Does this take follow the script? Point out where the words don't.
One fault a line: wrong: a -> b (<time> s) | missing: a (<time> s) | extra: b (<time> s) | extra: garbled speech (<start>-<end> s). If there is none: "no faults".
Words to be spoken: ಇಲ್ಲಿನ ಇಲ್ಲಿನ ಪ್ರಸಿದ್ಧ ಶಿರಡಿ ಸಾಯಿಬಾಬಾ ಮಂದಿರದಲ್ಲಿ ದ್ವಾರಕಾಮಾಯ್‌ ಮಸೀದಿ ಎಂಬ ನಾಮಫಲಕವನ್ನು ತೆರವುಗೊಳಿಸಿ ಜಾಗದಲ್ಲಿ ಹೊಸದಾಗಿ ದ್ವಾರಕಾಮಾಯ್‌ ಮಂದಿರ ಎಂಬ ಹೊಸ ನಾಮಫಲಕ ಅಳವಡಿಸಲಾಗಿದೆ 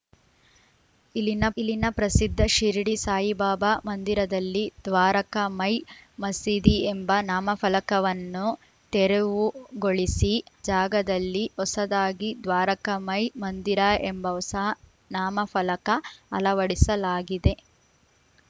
no faults